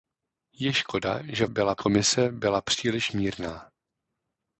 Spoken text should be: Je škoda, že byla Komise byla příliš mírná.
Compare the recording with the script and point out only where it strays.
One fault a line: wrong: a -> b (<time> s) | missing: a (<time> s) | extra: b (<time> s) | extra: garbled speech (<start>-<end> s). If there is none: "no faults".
no faults